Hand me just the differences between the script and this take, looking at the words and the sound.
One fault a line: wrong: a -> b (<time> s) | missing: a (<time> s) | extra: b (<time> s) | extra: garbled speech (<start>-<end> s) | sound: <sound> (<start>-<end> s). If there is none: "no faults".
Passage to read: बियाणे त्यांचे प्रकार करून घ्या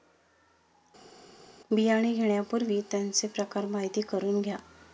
extra: घेण्यापूर्वी (2.1 s)
extra: माहिती (3.7 s)